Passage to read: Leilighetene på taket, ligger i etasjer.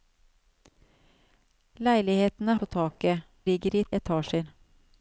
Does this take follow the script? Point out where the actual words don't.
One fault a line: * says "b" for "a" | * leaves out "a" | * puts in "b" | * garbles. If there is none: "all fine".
all fine